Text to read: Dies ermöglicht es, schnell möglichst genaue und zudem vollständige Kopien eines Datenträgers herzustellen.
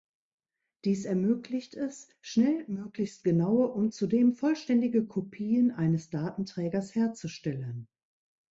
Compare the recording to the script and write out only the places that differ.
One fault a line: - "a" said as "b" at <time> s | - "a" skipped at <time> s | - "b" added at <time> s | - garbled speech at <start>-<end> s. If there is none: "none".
none